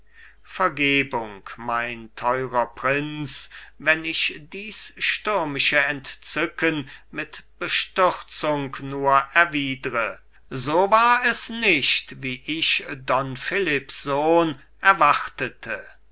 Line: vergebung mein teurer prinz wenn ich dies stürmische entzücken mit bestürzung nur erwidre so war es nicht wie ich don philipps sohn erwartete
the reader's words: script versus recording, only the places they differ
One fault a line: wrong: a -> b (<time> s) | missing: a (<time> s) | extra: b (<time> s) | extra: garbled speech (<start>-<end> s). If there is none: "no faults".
no faults